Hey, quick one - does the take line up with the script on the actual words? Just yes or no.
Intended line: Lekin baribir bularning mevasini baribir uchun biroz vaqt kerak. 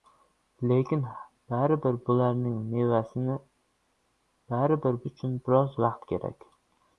yes